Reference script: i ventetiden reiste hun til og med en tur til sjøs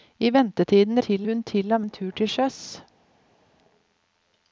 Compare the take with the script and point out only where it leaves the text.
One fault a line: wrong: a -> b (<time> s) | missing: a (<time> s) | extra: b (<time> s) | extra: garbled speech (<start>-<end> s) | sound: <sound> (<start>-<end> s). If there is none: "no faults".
wrong: reiste -> til (1.0 s)
missing: med (1.8 s)